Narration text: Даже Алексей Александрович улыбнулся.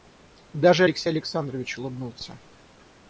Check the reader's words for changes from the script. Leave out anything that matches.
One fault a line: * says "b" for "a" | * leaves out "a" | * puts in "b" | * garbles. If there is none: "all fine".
all fine